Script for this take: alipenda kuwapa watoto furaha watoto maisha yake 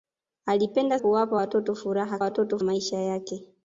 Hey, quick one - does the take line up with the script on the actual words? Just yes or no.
yes